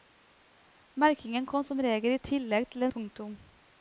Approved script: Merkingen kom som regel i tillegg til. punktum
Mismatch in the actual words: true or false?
false